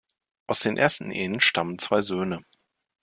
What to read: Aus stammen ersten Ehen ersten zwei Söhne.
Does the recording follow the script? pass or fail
fail